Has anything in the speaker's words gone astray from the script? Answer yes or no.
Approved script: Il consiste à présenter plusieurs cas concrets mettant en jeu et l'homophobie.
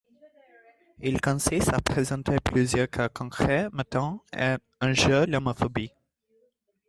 no